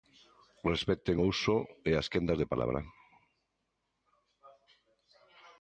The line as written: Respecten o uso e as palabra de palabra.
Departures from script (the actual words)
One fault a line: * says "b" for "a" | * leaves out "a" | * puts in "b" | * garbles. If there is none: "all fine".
* says "quendas" for "palabra"